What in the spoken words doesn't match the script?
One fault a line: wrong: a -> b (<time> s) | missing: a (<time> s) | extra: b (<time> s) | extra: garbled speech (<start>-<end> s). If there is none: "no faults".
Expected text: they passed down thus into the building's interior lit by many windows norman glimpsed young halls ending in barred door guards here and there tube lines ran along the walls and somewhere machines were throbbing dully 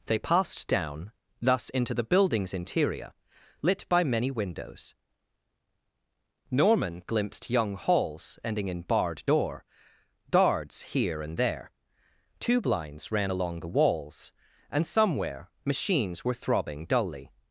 no faults